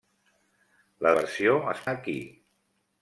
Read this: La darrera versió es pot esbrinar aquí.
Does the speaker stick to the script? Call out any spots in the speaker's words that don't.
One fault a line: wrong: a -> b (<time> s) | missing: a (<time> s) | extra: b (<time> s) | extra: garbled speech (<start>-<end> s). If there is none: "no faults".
missing: darrera (1.1 s)
missing: pot esbrinar (1.9 s)